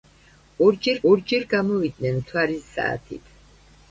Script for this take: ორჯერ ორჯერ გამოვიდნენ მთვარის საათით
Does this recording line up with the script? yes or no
yes